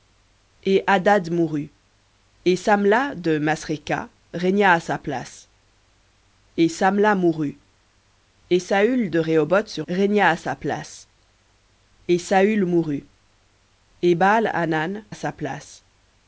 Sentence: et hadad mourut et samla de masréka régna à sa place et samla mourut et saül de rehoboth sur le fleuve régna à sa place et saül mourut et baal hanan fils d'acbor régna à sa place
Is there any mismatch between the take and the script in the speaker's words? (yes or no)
yes